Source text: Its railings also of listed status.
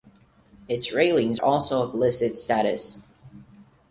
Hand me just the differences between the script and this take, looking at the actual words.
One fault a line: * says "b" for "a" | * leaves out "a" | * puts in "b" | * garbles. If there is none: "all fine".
all fine